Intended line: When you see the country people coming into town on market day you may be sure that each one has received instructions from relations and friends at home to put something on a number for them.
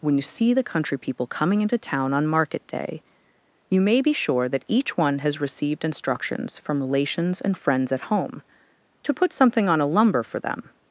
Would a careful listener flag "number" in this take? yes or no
yes